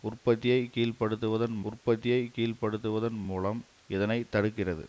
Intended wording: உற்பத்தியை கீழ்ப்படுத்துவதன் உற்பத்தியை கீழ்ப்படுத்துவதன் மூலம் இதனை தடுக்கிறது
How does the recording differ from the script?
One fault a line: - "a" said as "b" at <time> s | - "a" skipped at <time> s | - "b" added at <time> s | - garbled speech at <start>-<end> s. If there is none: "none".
none